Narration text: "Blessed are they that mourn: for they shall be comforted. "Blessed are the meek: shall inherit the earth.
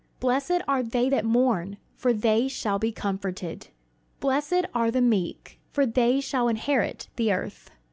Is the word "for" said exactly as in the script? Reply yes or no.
yes